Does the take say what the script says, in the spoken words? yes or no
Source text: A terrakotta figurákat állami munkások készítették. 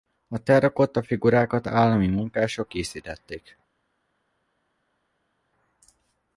yes